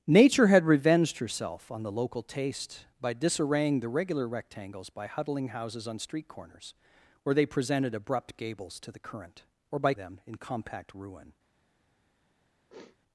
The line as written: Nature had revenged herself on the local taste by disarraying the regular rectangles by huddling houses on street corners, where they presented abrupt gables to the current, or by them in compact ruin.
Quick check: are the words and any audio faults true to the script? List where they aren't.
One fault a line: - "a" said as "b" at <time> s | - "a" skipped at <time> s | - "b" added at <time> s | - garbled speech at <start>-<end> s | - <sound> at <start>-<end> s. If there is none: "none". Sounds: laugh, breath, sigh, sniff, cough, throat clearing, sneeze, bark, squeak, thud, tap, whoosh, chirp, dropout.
- sniff at 12.7-13.0 s